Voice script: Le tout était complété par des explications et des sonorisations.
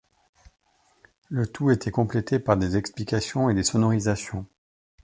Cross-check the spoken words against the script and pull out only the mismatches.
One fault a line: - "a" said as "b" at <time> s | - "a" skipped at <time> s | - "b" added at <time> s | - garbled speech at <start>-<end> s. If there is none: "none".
none